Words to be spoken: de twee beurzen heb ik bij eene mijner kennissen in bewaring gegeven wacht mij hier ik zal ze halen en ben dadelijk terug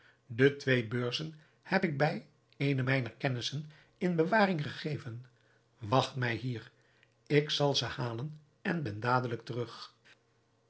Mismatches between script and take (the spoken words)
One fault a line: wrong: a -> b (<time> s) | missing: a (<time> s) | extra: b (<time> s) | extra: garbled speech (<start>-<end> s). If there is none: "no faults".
no faults